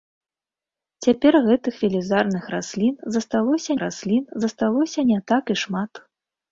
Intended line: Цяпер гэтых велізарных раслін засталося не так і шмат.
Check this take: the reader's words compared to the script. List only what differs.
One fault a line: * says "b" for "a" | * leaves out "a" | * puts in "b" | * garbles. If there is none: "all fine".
* puts in "раслін засталося"